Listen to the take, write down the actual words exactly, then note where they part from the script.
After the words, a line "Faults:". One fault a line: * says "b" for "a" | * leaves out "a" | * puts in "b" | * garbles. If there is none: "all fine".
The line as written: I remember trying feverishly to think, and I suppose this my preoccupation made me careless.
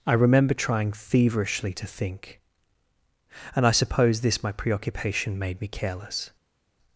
I remember trying feverishly to think, and I suppose this my preoccupation made me careless.
Faults:
all fine